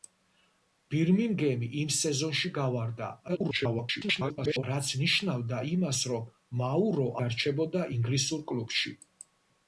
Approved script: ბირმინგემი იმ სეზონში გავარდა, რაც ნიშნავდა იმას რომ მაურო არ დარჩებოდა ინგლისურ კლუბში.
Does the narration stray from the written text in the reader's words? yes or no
yes